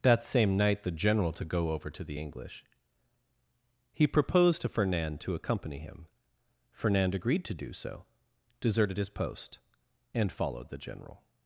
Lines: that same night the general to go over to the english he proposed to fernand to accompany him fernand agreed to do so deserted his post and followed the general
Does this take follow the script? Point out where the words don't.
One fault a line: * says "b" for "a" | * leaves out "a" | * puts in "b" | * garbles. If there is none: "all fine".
all fine